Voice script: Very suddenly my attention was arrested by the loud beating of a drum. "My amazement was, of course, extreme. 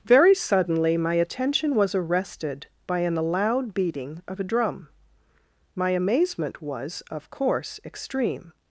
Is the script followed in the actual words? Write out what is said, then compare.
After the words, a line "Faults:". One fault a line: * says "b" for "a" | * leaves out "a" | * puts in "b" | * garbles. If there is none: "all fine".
Very suddenly my attention was arrested by an loud beating of a drum. "My amazement was, of course, extreme.
Faults:
* says "an" for "the"